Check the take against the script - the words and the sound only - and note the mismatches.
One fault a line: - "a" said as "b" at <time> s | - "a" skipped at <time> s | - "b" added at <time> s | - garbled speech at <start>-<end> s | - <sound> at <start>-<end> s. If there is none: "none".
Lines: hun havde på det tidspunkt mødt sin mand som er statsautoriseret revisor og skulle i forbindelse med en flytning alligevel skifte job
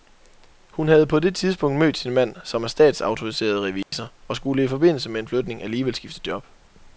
- dropout at 3.8-3.9 s